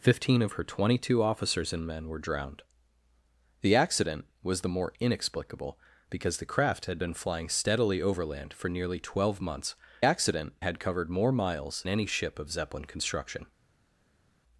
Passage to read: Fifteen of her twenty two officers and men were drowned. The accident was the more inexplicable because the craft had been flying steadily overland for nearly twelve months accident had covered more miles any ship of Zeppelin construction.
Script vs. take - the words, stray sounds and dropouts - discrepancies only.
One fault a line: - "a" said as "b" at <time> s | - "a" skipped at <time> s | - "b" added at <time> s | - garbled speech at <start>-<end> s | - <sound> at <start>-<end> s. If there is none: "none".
none